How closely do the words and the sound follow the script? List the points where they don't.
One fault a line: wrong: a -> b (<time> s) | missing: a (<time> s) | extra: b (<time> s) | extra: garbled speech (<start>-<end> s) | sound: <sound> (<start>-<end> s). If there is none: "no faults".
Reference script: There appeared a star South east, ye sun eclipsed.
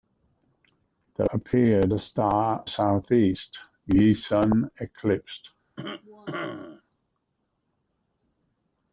sound: cough (5.8-6.8 s)